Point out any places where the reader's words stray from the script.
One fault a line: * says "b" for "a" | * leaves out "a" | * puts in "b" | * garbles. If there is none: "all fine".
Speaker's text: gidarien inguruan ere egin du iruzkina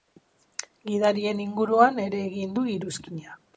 all fine